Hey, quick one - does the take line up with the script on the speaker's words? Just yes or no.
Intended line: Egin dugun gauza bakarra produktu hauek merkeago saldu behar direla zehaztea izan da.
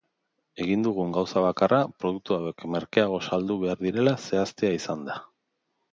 yes